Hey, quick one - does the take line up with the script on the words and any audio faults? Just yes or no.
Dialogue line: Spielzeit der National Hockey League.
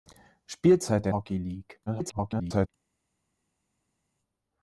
no